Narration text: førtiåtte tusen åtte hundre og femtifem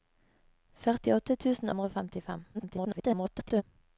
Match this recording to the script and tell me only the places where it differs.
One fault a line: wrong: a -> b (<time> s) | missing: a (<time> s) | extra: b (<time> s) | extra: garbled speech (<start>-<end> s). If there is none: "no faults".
missing: åtte (1.7 s)
extra: garbled speech (2.5-3.6 s)